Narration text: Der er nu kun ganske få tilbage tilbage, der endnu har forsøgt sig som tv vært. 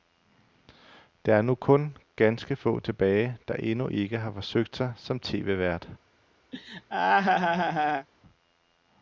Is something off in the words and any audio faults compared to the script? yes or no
yes